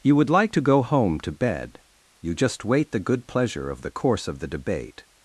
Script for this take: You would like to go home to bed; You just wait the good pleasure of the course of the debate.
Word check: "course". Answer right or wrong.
right